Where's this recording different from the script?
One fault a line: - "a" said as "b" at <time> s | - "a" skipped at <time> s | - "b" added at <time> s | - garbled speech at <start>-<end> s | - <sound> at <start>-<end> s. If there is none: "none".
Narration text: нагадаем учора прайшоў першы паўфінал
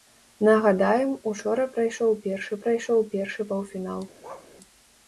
- "прайшоў першы" added at 2.7 s
- bark at 4.2-4.5 s